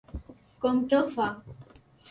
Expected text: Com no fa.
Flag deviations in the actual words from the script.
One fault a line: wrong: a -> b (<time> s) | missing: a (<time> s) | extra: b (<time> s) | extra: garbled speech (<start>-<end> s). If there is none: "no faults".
no faults